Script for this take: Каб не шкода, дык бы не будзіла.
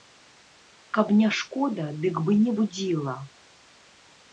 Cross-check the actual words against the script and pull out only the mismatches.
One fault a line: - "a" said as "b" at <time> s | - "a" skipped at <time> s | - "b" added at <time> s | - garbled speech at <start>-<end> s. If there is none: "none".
none